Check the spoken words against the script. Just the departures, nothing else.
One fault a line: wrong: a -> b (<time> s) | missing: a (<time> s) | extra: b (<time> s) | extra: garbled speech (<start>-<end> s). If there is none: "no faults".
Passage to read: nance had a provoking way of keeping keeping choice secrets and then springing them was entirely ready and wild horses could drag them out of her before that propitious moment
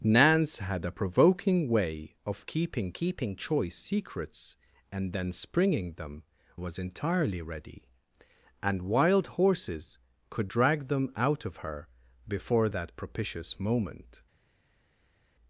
no faults